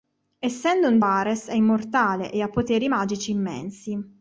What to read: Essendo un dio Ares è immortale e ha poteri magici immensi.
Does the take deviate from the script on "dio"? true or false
true